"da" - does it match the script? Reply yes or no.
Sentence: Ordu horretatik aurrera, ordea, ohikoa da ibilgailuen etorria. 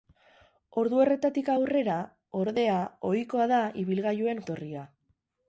yes